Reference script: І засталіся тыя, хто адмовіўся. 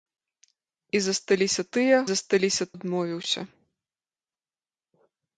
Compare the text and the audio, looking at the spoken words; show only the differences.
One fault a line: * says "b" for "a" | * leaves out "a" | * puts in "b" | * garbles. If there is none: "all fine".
* says "засталіся" for "хто"